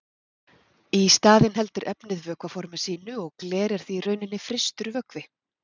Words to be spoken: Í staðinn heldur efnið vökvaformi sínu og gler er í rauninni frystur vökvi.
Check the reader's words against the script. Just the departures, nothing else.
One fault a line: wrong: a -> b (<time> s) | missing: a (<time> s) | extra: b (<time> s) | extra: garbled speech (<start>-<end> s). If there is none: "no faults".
extra: því (3.9 s)